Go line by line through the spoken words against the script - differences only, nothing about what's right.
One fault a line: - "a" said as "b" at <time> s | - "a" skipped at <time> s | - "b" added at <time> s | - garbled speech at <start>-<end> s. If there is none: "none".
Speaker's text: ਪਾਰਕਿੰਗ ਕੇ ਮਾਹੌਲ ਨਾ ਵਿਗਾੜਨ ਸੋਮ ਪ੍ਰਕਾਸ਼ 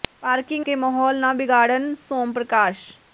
none